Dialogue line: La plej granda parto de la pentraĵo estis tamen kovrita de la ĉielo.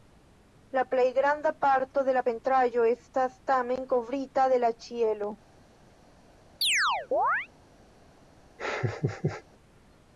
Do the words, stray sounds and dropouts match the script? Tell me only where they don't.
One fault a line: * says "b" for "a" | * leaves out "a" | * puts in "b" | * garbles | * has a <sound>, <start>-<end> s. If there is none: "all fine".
* says "estas" for "estis"
* has a chirp, 6.6-7.5 s
* has a laugh, 8.6-9.4 s